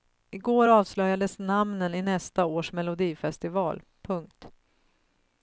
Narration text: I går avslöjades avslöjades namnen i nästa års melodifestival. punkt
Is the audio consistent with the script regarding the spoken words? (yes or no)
no